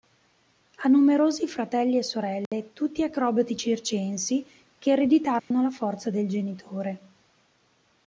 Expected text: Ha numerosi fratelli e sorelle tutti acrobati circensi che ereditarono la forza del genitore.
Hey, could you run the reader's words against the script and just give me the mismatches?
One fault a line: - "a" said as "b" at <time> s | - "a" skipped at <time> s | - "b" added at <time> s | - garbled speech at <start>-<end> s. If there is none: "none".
none